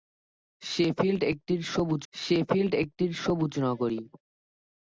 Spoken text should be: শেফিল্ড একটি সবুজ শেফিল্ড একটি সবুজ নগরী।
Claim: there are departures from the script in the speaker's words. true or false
false